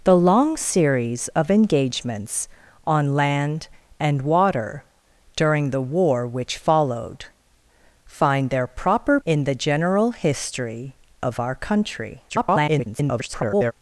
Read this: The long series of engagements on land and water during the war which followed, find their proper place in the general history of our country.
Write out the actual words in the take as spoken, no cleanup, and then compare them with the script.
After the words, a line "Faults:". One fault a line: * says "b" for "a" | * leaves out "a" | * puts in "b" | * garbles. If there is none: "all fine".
The long series of engagements on land and water during the war which followed, find their proper in the general history of our country. [garbled]
Faults:
* leaves out "place"
* garbles